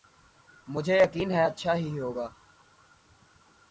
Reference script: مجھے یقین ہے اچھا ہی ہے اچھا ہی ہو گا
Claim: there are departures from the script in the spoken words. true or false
true